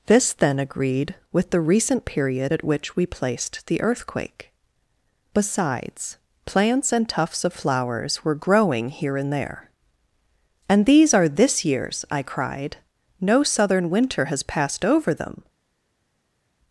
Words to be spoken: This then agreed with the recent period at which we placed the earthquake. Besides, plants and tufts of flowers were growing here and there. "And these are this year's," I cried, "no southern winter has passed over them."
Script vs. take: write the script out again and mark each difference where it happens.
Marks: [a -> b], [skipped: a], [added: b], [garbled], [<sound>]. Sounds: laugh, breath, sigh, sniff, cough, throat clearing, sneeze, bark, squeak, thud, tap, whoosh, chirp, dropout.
This then agreed with the recent period at which we placed the earthquake. Besides, plants and tufts of flowers were growing here and there. "And these are this year's," I cried, "no southern winter has passed over them."